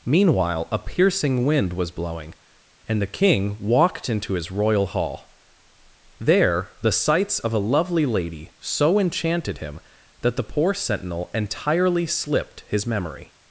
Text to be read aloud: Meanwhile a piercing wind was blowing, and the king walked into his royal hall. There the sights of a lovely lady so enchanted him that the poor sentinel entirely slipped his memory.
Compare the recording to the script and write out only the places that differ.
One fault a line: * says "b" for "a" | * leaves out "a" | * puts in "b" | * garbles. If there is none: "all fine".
all fine